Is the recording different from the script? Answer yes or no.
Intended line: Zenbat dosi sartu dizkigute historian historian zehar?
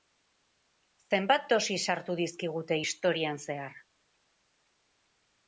yes